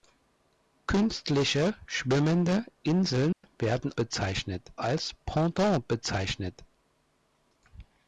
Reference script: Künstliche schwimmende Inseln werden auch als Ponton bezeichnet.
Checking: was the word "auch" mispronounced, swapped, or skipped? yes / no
yes